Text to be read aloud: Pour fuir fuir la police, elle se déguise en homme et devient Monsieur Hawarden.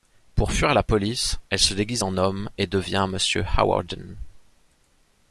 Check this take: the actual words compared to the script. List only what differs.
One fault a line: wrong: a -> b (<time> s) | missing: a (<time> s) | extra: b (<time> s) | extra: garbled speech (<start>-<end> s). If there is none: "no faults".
missing: fuir (0.7 s)